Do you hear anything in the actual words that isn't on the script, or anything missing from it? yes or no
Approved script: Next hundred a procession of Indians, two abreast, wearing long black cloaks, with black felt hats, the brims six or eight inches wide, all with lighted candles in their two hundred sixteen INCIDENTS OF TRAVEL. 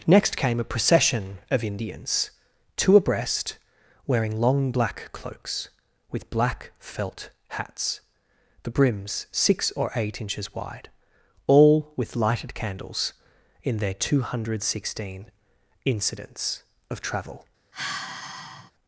yes